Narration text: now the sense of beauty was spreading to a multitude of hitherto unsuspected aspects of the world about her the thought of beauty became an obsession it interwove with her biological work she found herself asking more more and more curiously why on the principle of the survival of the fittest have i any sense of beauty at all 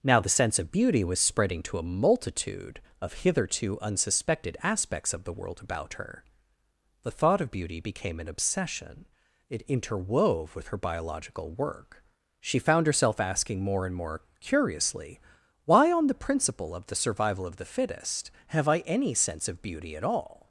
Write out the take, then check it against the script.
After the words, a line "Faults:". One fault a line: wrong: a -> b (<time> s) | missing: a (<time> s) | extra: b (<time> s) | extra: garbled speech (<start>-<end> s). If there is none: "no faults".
now the sense of beauty was spreading to a multitude of hitherto unsuspected aspects of the world about her the thought of beauty became an obsession it interwove with her biological work she found herself asking more and more curiously why on the principle of the survival of the fittest have i any sense of beauty at all
Faults:
missing: more (13.8 s)